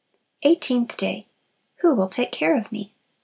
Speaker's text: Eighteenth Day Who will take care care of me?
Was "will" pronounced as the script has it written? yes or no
yes